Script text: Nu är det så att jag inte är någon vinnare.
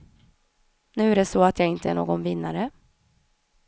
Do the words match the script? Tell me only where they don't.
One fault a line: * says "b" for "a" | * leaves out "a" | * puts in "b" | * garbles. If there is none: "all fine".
all fine